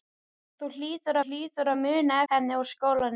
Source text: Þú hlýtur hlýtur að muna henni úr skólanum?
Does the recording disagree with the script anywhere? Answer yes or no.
no